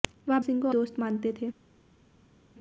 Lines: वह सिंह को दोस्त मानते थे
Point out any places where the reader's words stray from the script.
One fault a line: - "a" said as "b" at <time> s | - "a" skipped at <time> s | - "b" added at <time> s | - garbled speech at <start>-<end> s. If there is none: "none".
none